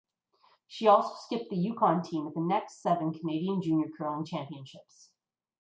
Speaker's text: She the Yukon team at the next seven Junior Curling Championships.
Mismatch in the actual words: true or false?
true